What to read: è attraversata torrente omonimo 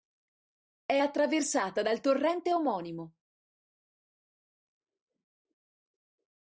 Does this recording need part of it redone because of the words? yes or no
yes